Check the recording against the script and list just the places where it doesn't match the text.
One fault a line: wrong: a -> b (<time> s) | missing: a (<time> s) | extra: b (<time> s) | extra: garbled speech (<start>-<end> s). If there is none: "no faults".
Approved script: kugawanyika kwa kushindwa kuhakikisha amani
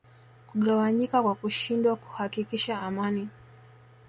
no faults